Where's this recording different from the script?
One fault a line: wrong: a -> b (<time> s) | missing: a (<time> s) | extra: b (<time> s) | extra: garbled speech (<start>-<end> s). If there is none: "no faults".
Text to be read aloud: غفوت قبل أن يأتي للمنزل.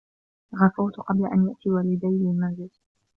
extra: والدي (1.7 s)